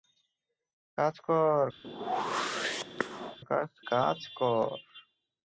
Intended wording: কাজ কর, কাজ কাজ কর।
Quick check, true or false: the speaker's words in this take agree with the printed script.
true